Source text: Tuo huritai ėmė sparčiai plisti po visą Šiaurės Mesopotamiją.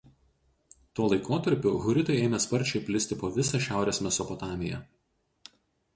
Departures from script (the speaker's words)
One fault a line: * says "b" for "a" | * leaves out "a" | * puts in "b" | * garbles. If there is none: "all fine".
* puts in "laikotarpiu"